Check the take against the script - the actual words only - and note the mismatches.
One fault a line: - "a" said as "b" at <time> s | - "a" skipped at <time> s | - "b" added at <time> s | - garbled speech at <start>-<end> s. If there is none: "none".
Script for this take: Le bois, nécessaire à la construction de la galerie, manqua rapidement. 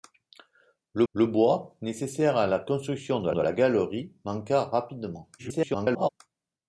- "le" added at 1.1 s
- "de" added at 3.3 s
- garbled speech at 5.4-6.1 s